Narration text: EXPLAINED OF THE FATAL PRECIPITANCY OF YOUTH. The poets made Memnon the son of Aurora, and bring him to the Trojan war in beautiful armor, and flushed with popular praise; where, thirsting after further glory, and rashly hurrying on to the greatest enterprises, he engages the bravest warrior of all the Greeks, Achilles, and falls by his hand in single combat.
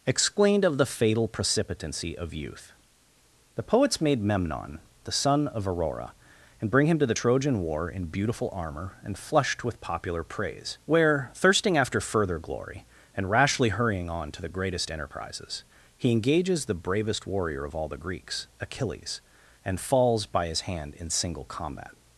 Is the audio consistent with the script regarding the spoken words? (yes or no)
yes